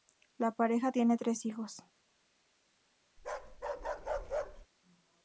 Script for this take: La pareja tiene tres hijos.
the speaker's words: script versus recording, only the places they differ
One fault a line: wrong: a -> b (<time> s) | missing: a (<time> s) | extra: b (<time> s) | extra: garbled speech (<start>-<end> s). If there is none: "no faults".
no faults